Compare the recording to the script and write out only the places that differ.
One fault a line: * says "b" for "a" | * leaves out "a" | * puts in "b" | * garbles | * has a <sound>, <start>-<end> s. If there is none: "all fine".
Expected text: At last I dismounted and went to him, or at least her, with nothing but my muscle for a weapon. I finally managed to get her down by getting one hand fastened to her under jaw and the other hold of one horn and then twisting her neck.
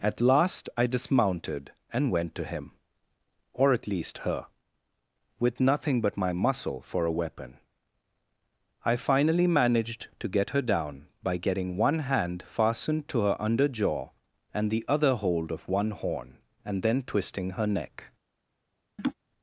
* has a laugh, 19.0-19.1 s